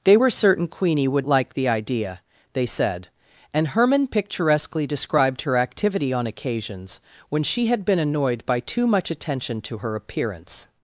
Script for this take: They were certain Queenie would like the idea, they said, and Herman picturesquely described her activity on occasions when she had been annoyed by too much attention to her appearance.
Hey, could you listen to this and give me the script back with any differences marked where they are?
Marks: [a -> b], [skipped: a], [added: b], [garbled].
They were certain Queenie would like the idea, they said, and Herman picturesquely described her activity on occasions when she had been annoyed by too much attention to her appearance.